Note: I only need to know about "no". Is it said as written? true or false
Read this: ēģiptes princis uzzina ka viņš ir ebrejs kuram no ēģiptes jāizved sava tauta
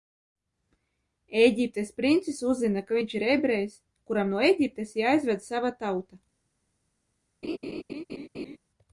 true